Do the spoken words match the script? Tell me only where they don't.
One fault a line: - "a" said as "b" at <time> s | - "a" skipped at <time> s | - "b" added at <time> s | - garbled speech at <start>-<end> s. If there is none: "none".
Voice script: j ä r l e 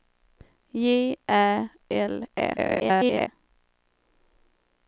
- "r" skipped at 1.7 s
- garbled speech at 2.6-3.3 s